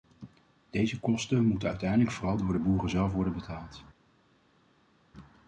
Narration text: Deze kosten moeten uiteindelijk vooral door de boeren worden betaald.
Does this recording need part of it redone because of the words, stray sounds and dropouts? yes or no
yes